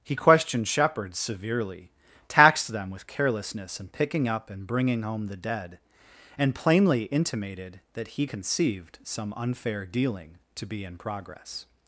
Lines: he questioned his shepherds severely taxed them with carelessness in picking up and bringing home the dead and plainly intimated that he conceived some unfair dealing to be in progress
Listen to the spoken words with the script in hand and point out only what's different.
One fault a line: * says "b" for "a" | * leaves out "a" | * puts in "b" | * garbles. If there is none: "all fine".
* leaves out "his"